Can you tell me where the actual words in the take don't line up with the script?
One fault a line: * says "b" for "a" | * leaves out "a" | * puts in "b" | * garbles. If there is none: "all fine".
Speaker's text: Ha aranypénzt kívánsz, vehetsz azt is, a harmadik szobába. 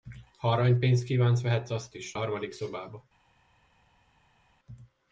all fine